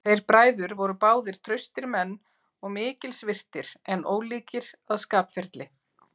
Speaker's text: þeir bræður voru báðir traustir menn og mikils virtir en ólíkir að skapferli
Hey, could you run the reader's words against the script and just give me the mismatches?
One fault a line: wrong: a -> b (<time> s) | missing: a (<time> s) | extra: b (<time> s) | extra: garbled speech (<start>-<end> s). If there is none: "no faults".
no faults